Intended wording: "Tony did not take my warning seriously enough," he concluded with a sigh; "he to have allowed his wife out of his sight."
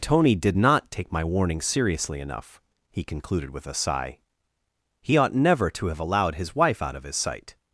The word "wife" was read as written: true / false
true